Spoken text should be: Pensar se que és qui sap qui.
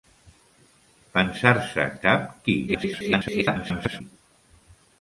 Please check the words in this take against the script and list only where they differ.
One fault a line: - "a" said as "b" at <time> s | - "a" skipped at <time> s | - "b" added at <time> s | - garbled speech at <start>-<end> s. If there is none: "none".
- "que és qui" skipped at 1.9 s
- garbled speech at 2.7-4.0 s